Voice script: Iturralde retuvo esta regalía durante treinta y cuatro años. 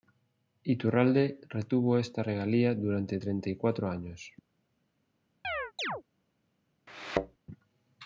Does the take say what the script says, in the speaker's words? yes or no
yes